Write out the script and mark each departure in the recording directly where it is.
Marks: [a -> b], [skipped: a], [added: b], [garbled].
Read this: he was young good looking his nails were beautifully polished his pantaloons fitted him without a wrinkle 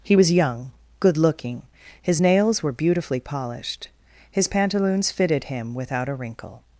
he was young good looking his nails were beautifully polished his pantaloons fitted him without a wrinkle